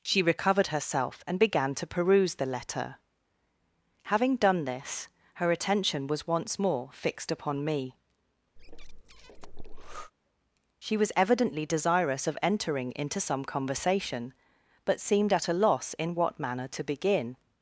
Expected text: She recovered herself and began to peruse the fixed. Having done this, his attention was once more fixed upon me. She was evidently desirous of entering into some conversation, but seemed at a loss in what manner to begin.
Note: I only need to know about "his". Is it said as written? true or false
false